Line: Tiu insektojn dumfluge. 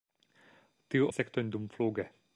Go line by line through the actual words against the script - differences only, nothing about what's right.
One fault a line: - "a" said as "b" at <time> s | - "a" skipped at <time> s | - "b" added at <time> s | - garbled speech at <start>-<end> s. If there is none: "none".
none